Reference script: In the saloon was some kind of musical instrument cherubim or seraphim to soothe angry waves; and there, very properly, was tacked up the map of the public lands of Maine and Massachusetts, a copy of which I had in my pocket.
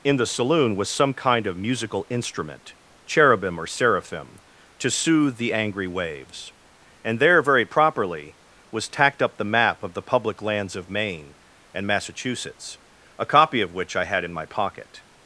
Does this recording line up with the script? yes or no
no